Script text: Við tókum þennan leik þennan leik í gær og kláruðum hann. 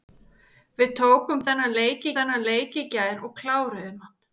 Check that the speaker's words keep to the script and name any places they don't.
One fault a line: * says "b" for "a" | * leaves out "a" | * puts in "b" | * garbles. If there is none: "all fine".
all fine